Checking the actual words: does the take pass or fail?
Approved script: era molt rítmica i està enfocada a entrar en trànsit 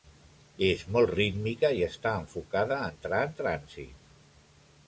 fail